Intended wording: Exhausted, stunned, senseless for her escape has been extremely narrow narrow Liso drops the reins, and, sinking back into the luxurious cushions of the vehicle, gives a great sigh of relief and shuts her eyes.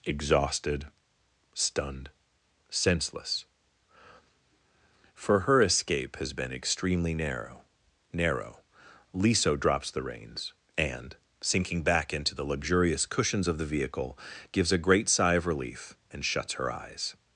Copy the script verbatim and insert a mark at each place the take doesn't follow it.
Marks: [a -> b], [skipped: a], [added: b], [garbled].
Exhausted, stunned, senseless for her escape has been extremely narrow narrow Liso drops the reins, and, sinking back into the luxurious cushions of the vehicle, gives a great sigh of relief and shuts her eyes.